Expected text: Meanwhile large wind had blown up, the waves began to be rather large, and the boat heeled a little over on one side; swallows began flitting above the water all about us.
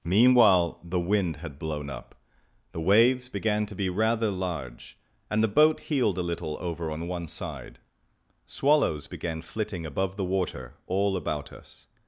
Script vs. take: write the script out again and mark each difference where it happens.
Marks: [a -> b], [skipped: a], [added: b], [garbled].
Meanwhile [large -> the] wind had blown up, the waves began to be rather large, and the boat heeled a little over on one side; swallows began flitting above the water all about us.